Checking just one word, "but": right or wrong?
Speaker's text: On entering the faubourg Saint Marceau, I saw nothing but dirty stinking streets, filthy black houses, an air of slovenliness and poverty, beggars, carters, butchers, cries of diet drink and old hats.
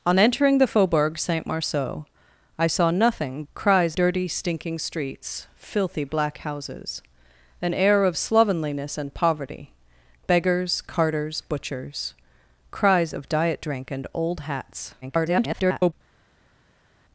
wrong